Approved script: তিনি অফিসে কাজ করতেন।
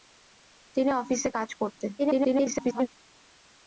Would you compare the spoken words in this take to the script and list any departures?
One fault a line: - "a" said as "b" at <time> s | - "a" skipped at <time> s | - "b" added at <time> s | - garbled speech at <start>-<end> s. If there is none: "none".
- garbled speech at 2.0-2.9 s